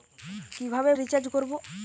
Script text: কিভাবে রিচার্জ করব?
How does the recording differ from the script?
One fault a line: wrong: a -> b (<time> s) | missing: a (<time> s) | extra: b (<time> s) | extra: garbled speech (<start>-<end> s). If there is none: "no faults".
no faults